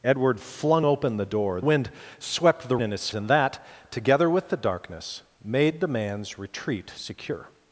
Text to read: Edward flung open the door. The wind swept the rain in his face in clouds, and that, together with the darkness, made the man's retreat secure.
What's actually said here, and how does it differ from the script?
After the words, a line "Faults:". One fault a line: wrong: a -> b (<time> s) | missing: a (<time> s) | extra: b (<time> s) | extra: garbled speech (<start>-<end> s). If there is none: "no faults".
Edward flung open the door. Wind swept the in his and that, together with the darkness, made the man's retreat secure.
Faults:
missing: The (1.6 s)
missing: rain (2.8 s)
missing: face in clouds (3.1 s)